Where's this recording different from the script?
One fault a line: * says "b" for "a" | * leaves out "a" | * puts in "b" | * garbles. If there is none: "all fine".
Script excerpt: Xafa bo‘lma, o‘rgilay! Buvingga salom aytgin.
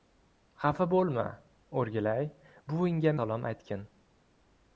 all fine